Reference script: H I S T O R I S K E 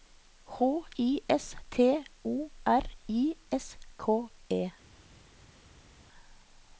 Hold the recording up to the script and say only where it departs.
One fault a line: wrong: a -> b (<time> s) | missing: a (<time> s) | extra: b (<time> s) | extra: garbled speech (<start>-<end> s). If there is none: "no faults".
no faults